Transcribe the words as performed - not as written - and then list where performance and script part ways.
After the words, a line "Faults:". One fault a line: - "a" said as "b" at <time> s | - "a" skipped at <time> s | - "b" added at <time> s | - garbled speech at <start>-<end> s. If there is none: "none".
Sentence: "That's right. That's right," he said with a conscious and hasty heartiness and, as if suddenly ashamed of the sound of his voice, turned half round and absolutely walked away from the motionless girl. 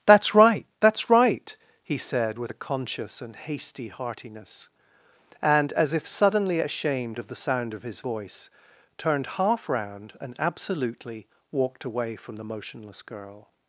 "That's right. That's right," he said with a conscious and hasty heartiness and, as if suddenly ashamed of the sound of his voice, turned half round and absolutely walked away from the motionless girl.
Faults:
none